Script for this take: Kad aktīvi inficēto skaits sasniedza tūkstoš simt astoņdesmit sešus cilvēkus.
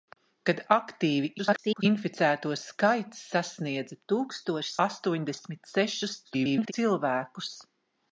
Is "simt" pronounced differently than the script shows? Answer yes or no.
yes